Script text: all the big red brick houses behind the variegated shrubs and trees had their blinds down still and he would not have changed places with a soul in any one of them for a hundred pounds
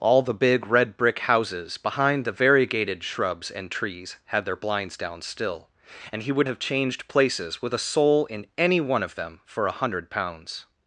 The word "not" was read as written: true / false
false